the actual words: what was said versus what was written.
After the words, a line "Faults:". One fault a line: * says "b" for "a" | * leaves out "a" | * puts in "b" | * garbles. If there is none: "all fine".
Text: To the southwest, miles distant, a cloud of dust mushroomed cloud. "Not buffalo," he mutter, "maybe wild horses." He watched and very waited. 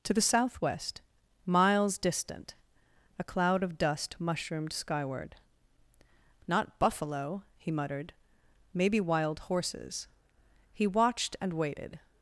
To the southwest, miles distant, a cloud of dust mushroomed skyward. "Not buffalo," he muttered, "maybe wild horses." He watched and waited.
Faults:
* says "skyward" for "cloud"
* says "muttered" for "mutter"
* leaves out "very"